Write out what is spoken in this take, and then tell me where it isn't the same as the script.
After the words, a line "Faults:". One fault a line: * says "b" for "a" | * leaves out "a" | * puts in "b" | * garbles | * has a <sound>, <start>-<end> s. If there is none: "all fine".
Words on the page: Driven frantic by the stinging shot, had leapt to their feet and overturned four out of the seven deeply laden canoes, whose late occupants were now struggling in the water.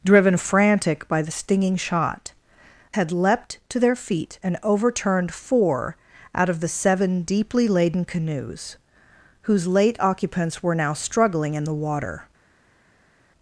Driven frantic by the stinging shot, had leapt to their feet and overturned four out of the seven deeply laden canoes, whose late occupants were now struggling in the water.
Faults:
all fine